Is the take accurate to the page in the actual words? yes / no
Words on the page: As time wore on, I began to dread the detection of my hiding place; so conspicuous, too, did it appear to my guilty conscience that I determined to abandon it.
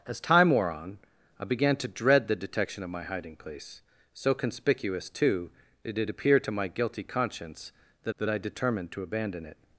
no